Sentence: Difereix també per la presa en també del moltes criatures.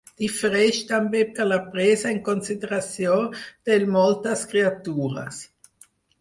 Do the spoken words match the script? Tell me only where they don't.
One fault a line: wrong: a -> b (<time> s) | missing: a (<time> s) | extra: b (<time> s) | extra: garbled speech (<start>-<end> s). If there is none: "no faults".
wrong: també -> consideració (2.3 s)